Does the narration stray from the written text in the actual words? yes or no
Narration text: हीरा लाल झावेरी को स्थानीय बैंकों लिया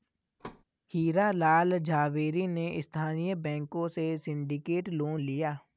yes